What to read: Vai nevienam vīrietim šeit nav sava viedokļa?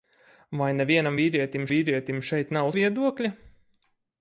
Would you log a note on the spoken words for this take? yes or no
yes